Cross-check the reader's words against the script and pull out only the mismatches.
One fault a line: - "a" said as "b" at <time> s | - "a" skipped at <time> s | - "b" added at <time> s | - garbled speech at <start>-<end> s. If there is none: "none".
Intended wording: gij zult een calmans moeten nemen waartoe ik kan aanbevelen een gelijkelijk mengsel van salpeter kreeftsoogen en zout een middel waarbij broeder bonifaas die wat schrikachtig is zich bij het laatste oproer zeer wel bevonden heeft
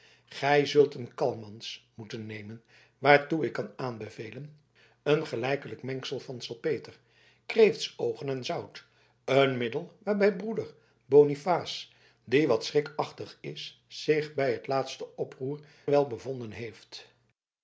- "zeer" skipped at 15.6 s